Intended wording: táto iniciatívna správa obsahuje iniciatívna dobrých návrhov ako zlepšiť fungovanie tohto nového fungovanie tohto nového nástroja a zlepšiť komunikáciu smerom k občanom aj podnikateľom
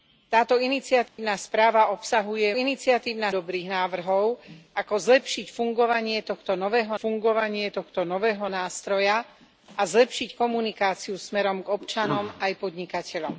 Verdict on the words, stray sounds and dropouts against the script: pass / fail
fail